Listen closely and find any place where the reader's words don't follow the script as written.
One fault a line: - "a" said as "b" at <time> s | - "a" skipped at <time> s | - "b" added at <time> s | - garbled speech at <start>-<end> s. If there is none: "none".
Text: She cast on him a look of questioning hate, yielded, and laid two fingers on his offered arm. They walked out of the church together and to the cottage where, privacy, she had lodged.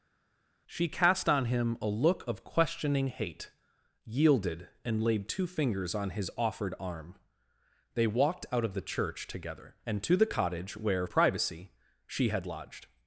none